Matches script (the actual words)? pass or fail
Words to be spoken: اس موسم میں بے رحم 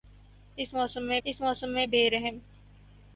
fail